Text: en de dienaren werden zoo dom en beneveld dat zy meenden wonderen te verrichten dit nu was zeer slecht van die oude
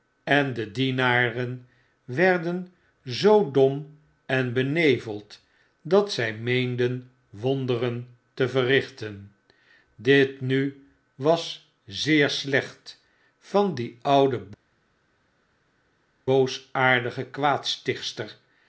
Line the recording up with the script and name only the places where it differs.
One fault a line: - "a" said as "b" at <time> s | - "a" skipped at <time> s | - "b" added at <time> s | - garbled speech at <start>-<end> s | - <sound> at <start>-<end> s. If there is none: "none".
none